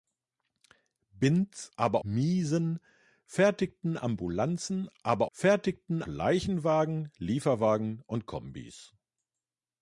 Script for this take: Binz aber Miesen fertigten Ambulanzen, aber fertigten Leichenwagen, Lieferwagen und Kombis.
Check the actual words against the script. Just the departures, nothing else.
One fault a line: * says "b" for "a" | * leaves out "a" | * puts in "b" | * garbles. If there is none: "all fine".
all fine